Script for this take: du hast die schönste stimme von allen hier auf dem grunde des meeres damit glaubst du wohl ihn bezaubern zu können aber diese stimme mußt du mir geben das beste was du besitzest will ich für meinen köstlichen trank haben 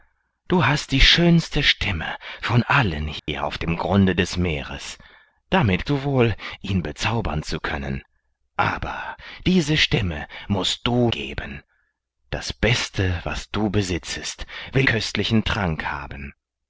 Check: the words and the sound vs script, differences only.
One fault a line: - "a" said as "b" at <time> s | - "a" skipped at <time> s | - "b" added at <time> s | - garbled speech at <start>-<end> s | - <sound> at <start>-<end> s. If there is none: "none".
- dropout at 3.2-3.3 s
- "glaubst" skipped at 5.9 s
- "mir" skipped at 11.1 s
- "ich für meinen" skipped at 14.9 s